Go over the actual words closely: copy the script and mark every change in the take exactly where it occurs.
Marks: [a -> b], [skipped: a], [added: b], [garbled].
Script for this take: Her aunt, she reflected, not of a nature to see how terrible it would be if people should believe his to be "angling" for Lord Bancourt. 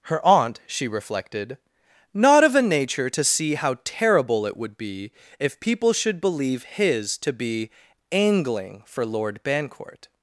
Her aunt, she reflected, not of a nature to see how terrible it would be if people should believe his to be "angling" for Lord Bancourt.